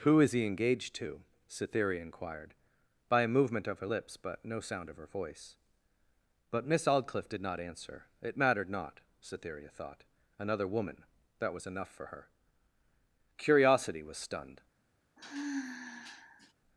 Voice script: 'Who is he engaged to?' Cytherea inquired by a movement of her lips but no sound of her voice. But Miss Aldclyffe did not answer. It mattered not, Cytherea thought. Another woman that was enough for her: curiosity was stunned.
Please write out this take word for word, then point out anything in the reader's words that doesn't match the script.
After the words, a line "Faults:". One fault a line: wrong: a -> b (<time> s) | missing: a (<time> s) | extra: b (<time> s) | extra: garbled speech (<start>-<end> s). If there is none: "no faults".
'Who is he engaged to?' Cytherea inquired by a movement of her lips but no sound of her voice. But Miss Aldclyffe did not answer. It mattered not, Cytherea thought. Another woman that was enough for her: curiosity was stunned.
Faults:
no faults